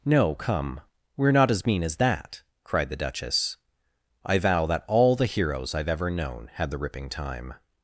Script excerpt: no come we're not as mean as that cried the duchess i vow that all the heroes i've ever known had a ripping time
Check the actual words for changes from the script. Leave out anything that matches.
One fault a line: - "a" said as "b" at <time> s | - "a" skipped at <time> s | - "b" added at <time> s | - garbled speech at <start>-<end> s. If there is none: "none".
- "a" said as "the" at 6.7 s